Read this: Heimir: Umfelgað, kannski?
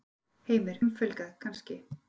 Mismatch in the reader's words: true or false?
false